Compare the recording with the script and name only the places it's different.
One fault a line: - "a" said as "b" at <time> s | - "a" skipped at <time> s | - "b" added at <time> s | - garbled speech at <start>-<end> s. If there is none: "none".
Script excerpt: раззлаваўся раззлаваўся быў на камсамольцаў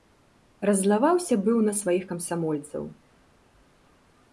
- "раззлаваўся" skipped at 1.4 s
- "сваіх" added at 1.8 s